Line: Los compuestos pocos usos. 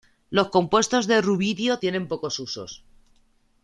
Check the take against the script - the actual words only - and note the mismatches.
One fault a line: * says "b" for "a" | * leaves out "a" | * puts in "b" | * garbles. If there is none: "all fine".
* puts in "de rubidio tienen"